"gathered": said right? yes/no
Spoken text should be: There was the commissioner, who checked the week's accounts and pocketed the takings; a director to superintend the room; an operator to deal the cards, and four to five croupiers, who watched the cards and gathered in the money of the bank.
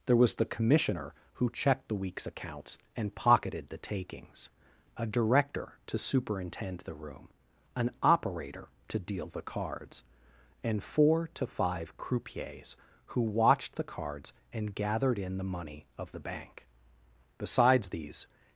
yes